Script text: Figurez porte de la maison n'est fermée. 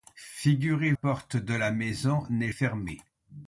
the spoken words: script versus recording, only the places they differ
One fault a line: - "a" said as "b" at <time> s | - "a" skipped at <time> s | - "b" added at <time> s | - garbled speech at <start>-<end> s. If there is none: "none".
none